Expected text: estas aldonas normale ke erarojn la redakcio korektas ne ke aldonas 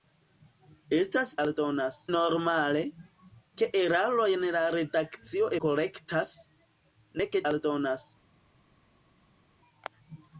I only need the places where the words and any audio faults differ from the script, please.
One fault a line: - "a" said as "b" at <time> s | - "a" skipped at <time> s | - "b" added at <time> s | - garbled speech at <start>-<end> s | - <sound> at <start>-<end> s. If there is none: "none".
none